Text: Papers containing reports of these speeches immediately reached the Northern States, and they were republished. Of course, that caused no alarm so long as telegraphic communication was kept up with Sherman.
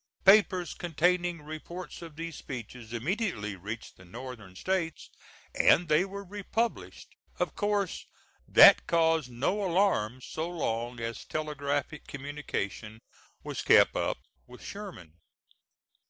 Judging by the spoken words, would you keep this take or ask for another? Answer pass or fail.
pass